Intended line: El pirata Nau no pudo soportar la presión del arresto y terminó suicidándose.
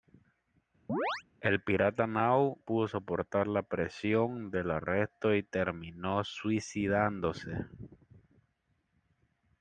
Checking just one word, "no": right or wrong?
wrong